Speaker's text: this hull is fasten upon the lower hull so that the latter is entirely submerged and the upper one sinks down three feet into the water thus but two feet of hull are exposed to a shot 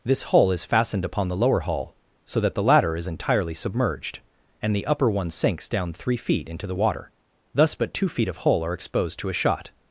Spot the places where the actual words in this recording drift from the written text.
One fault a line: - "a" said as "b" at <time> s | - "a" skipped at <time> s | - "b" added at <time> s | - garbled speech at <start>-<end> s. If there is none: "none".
- "fasten" said as "fastened" at 0.7 s